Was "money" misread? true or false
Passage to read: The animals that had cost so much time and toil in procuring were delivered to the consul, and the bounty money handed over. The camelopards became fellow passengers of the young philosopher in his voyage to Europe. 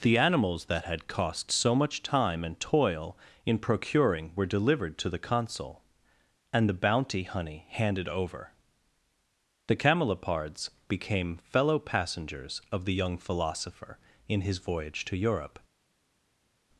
true